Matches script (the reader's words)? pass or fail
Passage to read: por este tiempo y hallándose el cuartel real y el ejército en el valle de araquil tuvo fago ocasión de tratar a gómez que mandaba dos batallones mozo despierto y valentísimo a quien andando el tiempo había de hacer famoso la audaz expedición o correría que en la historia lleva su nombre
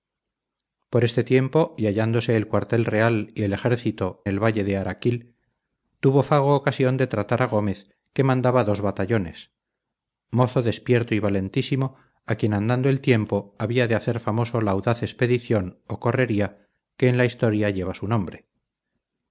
fail